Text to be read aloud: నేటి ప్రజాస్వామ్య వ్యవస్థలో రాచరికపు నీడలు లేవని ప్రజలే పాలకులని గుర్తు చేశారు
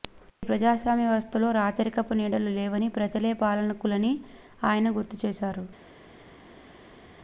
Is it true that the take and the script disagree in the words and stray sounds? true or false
true